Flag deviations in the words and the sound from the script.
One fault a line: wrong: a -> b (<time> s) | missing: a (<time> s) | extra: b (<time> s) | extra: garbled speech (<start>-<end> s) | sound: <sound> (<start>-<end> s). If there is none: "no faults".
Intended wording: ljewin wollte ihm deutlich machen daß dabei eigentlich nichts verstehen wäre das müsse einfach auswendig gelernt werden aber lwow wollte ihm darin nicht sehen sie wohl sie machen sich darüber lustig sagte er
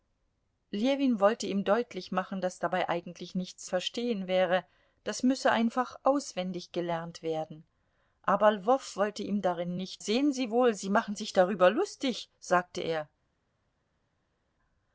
no faults